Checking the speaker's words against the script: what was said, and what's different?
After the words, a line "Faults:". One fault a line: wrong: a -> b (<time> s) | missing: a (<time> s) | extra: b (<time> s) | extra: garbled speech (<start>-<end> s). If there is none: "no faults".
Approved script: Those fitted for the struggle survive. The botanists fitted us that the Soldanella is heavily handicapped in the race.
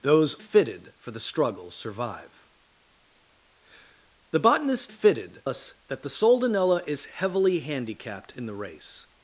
Those fitted for the struggle survive. The botanists fitted us that the Soldanella is heavily handicapped in the race.
Faults:
no faults